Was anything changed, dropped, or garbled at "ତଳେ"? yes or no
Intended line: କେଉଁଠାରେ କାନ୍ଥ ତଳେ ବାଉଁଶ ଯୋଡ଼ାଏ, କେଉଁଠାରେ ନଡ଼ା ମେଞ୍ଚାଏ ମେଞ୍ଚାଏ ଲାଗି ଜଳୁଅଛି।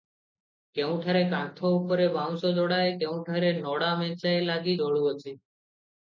yes